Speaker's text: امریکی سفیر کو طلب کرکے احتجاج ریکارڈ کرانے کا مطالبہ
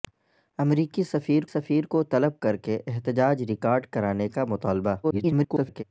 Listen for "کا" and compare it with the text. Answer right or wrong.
right